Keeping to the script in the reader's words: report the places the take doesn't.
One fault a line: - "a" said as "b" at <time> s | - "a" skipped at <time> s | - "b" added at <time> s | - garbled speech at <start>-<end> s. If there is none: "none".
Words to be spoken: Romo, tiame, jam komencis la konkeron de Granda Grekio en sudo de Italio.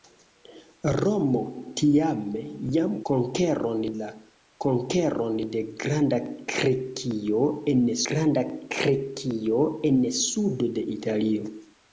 - "komencis" said as "konkeron" at 3.1 s
- "Granda Grekio en" added at 8.1 s